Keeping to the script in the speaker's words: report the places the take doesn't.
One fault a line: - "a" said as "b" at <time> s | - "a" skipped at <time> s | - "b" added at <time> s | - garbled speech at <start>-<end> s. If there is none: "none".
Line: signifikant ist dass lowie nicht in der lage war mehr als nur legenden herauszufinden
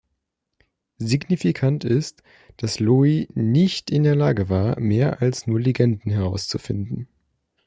none